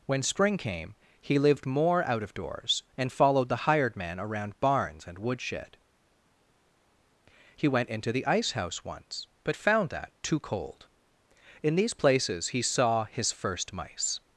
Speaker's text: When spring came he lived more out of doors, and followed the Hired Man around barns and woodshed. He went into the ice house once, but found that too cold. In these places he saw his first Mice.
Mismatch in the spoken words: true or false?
false